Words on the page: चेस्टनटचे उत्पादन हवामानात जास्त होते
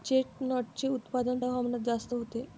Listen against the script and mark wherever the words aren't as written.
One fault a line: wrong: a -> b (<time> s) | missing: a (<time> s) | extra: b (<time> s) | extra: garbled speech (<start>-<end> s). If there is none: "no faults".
no faults